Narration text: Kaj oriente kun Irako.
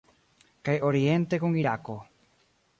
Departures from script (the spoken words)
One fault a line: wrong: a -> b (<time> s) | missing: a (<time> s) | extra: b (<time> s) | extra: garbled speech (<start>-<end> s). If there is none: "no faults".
no faults